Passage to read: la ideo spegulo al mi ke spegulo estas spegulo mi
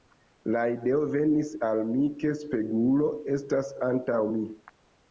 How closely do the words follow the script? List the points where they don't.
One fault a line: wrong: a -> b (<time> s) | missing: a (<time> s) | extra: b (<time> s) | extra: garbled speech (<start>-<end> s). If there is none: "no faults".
wrong: spegulo -> venis (1.2 s)
wrong: spegulo -> antaŭ (3.9 s)